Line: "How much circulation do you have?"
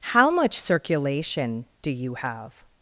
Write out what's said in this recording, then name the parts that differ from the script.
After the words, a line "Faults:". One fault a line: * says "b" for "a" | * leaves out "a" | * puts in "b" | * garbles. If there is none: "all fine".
"How much circulation do you have?"
Faults:
all fine